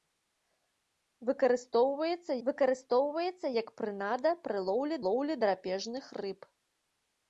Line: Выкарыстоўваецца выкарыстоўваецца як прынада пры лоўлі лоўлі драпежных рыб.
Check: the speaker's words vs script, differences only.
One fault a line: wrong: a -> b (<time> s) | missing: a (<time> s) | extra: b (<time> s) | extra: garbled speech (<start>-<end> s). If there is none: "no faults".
no faults